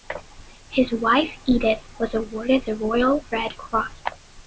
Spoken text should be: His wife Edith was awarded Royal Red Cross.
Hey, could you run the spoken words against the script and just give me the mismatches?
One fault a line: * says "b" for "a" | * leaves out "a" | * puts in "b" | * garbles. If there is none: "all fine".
* puts in "the"